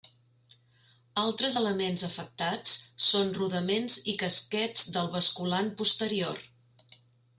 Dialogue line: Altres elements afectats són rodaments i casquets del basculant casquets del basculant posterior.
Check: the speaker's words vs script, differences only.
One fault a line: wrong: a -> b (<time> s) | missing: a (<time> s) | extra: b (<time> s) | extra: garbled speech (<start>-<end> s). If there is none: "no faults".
missing: casquets del basculant (5.7 s)